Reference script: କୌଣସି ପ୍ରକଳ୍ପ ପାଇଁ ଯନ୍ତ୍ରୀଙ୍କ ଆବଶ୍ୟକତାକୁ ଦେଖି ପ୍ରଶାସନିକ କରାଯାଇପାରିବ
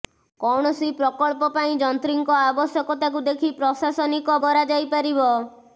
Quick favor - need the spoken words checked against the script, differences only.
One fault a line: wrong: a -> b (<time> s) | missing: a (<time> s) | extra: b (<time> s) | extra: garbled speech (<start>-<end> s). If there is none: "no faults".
no faults